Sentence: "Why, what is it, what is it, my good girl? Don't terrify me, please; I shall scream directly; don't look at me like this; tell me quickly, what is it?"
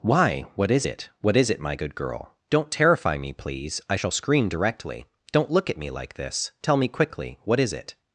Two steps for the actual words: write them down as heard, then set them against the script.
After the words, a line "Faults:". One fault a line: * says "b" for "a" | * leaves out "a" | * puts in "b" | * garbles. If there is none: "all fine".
"Why, what is it, what is it, my good girl? Don't terrify me, please; I shall scream directly; don't look at me like this; tell me quickly, what is it?"
Faults:
all fine